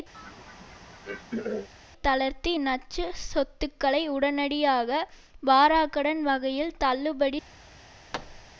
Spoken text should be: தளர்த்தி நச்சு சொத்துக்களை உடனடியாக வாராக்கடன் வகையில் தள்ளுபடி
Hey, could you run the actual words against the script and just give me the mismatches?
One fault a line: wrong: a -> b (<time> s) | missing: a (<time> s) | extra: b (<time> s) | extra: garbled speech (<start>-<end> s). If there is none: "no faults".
no faults